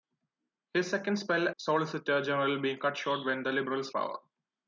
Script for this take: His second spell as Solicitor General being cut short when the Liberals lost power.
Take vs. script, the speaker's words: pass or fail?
fail